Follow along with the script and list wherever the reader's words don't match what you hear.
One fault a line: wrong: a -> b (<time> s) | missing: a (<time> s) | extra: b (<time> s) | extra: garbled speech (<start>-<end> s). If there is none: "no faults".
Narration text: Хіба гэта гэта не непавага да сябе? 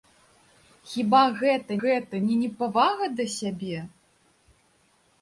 no faults